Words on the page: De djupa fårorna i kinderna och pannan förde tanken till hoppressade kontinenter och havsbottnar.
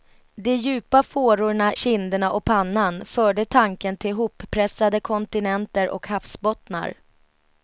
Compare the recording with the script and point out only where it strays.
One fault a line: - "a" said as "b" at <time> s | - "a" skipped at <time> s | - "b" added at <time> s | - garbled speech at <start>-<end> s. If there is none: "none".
- "i" skipped at 1.7 s